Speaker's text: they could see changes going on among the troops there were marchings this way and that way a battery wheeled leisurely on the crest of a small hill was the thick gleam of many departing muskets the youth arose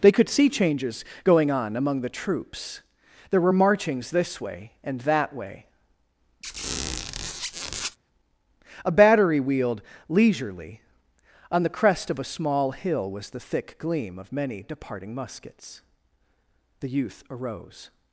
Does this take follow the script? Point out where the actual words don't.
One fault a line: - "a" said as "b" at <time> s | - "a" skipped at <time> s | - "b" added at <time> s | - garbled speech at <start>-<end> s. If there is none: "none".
none